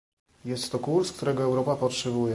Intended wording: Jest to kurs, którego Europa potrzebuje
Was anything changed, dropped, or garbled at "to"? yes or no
no